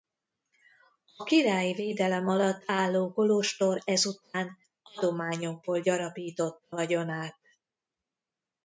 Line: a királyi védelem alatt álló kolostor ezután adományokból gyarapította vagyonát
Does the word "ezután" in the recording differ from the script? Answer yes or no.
no